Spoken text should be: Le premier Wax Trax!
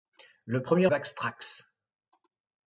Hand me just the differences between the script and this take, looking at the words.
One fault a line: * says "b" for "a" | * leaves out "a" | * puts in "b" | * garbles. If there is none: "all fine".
all fine